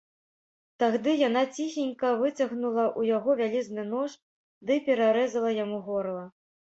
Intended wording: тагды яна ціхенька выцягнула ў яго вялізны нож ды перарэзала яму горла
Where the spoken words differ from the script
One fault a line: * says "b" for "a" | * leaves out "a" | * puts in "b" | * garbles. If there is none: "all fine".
all fine